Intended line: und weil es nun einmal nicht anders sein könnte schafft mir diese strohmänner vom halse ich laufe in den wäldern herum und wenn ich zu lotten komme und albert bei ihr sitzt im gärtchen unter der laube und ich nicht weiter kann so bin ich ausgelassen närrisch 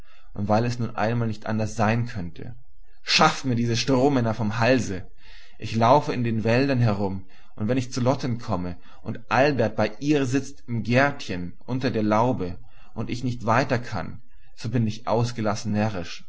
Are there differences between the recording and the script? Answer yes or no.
no